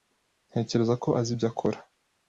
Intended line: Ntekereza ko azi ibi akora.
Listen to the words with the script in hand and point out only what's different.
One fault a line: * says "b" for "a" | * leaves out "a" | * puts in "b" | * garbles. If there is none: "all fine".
* says "ibyo" for "ibi"